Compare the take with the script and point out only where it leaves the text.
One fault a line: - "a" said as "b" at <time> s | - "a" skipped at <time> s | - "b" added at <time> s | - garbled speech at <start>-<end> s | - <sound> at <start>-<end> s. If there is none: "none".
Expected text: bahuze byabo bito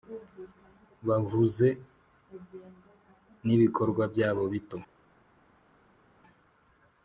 - "nibikorwa" added at 3.5 s